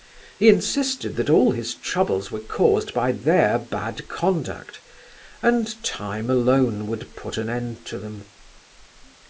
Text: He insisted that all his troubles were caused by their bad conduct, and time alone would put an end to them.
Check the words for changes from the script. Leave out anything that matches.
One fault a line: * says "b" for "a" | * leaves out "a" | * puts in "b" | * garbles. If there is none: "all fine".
all fine